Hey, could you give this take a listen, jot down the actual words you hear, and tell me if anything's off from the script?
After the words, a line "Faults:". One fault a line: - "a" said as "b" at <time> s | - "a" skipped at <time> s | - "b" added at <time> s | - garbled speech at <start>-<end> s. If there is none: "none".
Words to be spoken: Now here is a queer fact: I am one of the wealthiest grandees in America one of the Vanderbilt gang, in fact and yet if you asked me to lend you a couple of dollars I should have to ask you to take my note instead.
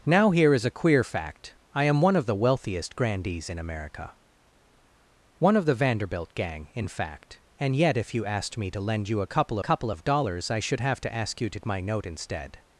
Now here is a queer fact: I am one of the wealthiest grandees in America one of the Vanderbilt gang, in fact and yet if you asked me to lend you a couple couple of dollars I should have to ask you to my note instead.
Faults:
- "couple" added at 9.6 s
- "take" skipped at 11.6 s